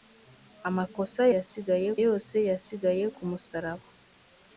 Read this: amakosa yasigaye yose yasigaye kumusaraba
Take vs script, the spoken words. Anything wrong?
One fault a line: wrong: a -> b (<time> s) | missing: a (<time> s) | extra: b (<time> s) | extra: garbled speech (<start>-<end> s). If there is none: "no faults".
no faults